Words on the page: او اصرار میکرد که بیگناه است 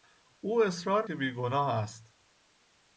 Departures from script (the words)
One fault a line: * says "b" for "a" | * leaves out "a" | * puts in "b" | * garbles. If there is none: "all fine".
* leaves out "میکرد"